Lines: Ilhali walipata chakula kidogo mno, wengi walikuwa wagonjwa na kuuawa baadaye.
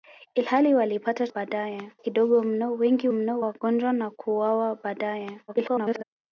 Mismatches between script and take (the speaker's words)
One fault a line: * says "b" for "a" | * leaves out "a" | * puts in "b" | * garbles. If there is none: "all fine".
* says "baadaye" for "chakula"
* says "mno" for "walikuwa"
* garbles